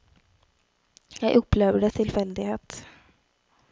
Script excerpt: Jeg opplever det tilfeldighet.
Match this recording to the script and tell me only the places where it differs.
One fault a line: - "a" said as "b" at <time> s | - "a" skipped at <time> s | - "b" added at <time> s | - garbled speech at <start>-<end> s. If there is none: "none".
none